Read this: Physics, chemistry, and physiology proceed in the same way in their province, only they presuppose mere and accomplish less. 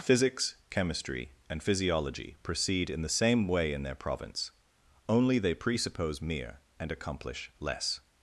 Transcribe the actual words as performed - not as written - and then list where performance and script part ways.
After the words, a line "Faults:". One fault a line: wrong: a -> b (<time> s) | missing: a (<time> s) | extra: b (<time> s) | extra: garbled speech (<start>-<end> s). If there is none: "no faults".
Physics, chemistry, and physiology proceed in the same way in their province, only they presuppose mere and accomplish less.
Faults:
no faults